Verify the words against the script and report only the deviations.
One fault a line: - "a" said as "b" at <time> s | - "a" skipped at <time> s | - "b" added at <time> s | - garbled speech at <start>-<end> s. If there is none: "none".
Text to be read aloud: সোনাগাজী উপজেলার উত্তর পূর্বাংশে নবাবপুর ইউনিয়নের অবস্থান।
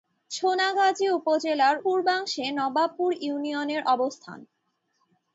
- "উত্তর" skipped at 1.8 s